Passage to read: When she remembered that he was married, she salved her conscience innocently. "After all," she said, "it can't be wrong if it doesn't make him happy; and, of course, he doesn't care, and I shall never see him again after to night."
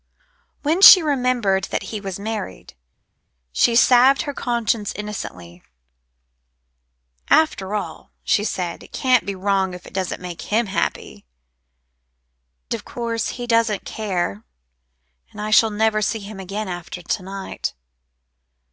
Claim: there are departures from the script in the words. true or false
true